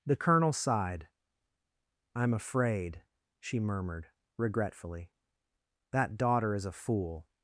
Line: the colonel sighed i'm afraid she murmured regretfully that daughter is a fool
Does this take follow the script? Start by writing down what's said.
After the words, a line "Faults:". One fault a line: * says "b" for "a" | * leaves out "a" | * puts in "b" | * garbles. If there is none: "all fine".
the colonel sighed i'm afraid she murmured regretfully that daughter is a fool
Faults:
all fine